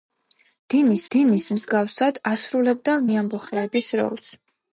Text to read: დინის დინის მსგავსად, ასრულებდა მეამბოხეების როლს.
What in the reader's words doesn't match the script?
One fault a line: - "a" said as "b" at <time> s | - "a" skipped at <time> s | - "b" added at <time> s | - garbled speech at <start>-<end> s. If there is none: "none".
none